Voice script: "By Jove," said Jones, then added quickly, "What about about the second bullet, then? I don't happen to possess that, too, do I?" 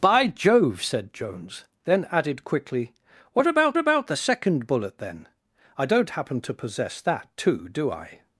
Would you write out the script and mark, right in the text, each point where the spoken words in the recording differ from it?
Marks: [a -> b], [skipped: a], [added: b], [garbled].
"By Jove," said Jones, then added quickly, "What about about the second bullet, then? I don't happen to possess that, too, do I?"